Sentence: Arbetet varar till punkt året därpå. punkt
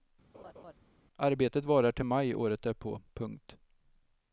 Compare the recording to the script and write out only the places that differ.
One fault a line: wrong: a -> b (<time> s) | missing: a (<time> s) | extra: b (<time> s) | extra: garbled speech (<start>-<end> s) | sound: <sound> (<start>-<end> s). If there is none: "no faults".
sound: laugh (0.3-0.7 s)
wrong: punkt -> maj (2.0 s)